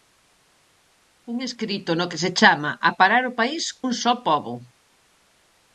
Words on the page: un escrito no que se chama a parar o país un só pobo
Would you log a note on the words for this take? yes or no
no